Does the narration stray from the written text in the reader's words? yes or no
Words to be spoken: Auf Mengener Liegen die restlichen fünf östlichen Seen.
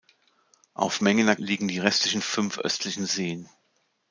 no